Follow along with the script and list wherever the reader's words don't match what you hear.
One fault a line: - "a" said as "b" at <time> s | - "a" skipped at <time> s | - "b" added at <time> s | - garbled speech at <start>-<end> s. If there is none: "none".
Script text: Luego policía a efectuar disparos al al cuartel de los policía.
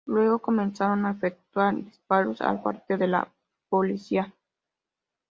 - "policía" said as "comenzaron" at 0.4 s
- "al" skipped at 2.6 s
- "los" said as "la" at 3.1 s